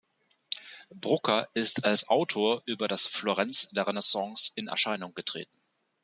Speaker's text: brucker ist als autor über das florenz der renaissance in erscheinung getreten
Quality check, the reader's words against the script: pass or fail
pass